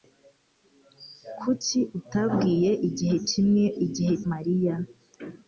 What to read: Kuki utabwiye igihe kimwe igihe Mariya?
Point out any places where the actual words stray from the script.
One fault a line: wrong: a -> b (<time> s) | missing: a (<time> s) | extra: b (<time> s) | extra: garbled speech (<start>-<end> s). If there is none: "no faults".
no faults